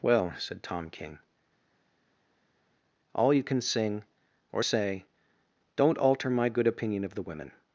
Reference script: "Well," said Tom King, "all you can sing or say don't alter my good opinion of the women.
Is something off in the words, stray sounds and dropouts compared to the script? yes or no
no